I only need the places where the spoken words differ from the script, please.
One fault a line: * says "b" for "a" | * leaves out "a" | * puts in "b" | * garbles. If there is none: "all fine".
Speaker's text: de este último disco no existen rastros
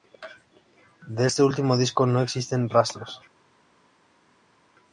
all fine